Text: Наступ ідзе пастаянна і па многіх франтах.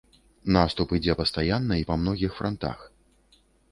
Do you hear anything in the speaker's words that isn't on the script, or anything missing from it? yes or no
no